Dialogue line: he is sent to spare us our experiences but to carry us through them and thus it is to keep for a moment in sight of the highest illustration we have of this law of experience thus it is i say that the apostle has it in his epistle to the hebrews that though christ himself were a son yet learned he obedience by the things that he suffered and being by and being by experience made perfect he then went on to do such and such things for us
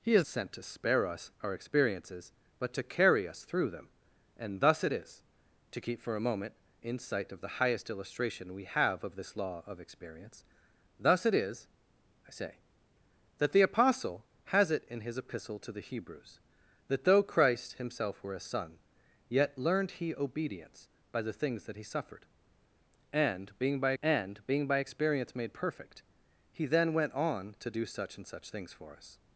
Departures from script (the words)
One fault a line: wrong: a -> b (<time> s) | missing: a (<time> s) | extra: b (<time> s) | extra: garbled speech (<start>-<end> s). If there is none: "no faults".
no faults